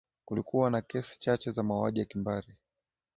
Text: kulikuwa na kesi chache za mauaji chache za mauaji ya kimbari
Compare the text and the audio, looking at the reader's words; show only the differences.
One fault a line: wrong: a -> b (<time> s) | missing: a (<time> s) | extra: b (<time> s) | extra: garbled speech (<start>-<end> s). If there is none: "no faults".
missing: chache za mauaji (2.0 s)